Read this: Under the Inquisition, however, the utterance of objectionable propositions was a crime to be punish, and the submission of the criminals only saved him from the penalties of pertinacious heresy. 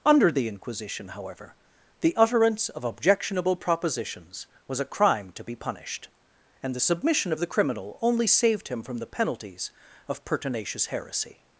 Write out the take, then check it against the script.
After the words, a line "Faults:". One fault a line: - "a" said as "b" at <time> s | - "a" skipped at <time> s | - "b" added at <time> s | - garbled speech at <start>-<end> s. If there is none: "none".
Under the Inquisition, however, the utterance of objectionable propositions was a crime to be punished, and the submission of the criminal only saved him from the penalties of pertinacious heresy.
Faults:
- "punish" said as "punished" at 5.5 s
- "criminals" said as "criminal" at 7.5 s